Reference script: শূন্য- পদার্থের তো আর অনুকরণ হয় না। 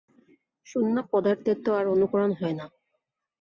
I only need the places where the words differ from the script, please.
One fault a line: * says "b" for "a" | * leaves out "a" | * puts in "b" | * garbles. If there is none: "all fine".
all fine